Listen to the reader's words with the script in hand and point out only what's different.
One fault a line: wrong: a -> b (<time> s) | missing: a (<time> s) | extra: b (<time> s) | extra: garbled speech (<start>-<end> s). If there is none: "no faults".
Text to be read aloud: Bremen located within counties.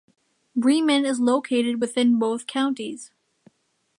extra: is (1.1 s)
extra: both (2.2 s)